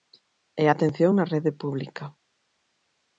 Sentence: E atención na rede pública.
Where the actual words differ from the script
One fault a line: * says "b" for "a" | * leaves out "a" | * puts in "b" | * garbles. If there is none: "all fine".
all fine